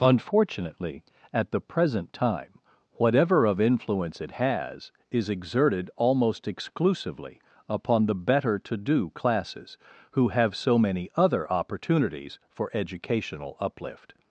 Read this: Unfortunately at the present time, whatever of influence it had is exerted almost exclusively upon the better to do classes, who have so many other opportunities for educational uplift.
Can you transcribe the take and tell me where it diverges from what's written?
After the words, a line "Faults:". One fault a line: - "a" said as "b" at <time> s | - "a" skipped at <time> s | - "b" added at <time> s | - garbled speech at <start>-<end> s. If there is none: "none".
Unfortunately at the present time, whatever of influence it has is exerted almost exclusively upon the better to do classes, who have so many other opportunities for educational uplift.
Faults:
- "had" said as "has" at 4.3 s